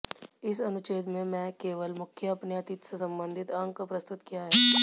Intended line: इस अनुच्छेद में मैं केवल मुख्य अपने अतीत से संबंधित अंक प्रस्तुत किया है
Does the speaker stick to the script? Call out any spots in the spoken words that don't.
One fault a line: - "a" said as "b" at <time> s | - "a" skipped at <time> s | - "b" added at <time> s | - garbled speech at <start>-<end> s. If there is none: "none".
none